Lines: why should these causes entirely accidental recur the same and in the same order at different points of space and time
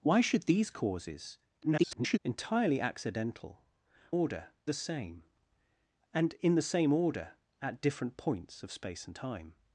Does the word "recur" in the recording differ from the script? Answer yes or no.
yes